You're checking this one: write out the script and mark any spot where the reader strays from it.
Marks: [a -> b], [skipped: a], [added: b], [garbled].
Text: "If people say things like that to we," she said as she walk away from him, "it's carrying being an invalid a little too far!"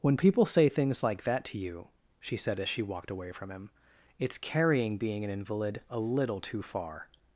["If -> When] people say things like that to [we," -> you] she said as she [walk -> walked] away from him, "it's carrying being an invalid a little too far!"